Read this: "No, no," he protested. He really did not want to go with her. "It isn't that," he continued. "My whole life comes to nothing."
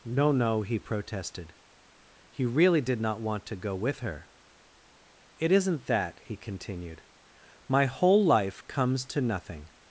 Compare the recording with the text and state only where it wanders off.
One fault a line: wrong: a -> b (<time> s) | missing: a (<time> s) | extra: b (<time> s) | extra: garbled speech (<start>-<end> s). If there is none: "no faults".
no faults